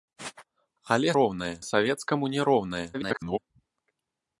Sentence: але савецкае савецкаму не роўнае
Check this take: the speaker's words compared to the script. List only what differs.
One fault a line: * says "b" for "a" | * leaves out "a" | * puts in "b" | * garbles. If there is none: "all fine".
* says "роўнае" for "савецкае"
* garbles